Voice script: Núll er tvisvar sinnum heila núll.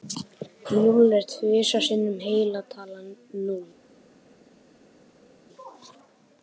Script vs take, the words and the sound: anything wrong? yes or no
yes